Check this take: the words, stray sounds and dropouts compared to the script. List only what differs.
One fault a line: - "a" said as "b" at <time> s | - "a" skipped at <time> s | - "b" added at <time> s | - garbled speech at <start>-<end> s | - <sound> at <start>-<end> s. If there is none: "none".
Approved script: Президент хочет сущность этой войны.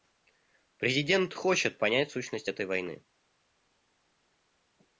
- "понять" added at 1.8 s